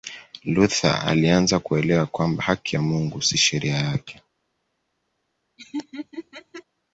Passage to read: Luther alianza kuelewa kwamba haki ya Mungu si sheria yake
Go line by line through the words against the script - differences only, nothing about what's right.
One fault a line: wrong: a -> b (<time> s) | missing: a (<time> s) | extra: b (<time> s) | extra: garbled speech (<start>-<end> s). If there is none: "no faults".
no faults